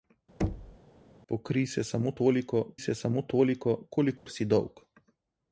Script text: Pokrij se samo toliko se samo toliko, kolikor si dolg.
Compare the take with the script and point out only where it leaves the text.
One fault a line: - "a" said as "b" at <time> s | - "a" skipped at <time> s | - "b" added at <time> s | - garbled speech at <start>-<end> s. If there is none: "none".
none